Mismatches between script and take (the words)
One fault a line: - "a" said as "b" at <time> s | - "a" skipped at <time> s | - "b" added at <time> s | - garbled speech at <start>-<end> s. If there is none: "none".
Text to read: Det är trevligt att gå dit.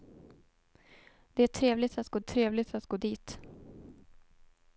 - "trevligt att gå" added at 2.2 s